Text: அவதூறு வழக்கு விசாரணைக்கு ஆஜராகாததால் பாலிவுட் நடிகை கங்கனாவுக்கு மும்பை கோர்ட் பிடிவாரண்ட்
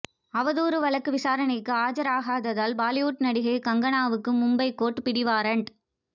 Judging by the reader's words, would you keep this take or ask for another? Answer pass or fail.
pass